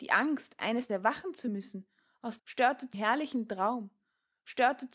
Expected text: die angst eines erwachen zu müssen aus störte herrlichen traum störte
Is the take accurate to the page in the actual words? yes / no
yes